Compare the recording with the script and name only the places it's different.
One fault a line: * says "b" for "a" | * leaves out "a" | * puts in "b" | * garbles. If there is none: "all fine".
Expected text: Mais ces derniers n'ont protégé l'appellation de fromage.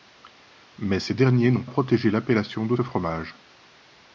all fine